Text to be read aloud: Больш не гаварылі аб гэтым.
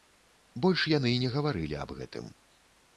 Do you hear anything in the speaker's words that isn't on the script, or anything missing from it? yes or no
yes